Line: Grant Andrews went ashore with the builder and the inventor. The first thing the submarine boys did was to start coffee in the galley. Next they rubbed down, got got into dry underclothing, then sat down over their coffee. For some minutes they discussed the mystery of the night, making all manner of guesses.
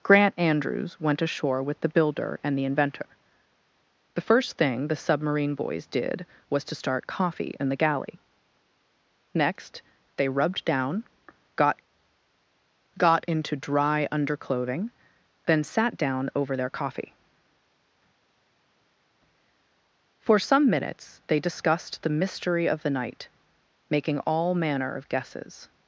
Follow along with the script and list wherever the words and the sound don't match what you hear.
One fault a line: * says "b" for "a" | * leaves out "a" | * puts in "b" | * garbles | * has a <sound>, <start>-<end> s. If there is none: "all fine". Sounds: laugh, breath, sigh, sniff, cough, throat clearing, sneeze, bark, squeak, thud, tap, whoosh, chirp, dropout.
all fine